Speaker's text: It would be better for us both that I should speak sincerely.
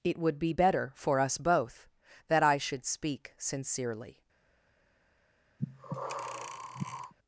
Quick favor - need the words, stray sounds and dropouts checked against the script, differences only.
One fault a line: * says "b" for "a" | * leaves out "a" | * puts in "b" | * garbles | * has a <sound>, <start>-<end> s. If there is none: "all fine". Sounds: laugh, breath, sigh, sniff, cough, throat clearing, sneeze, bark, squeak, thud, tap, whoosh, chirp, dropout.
* has a breath, 5.6-7.1 s